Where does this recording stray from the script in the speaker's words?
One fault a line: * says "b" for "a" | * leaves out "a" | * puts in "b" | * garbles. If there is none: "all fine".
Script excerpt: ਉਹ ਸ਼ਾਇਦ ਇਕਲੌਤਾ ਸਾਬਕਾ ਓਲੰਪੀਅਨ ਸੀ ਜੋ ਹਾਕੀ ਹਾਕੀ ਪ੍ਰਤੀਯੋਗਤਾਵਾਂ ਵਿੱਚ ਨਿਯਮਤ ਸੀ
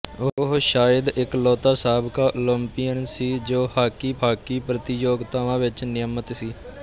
all fine